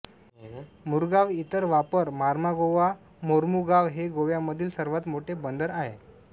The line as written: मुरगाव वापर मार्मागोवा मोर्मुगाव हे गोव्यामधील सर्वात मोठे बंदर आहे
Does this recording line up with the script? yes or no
no